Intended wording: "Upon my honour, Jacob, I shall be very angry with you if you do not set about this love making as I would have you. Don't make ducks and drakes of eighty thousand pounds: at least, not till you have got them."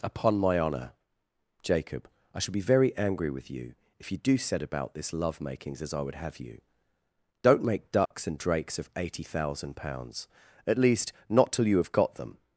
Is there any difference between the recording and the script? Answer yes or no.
yes